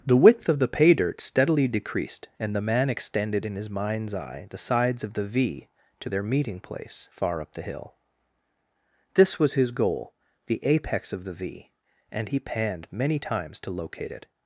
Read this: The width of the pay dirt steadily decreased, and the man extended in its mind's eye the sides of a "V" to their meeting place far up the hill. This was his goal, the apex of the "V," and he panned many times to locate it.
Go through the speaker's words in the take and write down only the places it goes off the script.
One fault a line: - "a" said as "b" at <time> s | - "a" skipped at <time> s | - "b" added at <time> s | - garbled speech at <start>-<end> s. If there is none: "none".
- "its" said as "his" at 3.5 s
- "a" said as "the" at 5.1 s